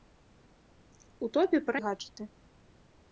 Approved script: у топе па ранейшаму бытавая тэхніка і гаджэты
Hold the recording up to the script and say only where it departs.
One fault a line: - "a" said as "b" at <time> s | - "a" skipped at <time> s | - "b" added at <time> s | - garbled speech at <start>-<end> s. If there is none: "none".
- "ранейшаму бытавая тэхніка" skipped at 1.8 s